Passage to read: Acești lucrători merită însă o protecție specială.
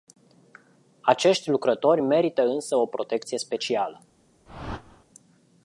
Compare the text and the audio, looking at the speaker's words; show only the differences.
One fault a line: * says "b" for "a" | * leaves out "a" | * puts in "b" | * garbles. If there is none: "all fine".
all fine